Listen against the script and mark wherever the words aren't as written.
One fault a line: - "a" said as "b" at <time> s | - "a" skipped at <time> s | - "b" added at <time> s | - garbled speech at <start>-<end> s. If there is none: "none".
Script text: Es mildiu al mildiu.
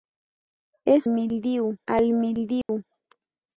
none